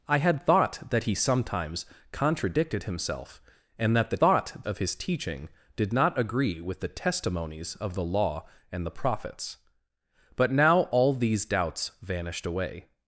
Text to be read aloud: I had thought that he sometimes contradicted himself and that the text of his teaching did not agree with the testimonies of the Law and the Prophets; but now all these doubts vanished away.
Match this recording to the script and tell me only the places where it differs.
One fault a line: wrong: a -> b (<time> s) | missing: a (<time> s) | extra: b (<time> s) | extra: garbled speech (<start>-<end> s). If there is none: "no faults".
wrong: text -> thought (4.2 s)